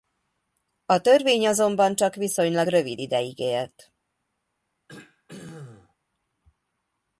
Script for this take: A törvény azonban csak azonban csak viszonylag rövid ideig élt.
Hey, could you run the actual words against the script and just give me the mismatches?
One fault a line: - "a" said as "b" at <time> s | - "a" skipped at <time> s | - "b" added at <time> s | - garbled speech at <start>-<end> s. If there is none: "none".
- "azonban csak" skipped at 2.1 s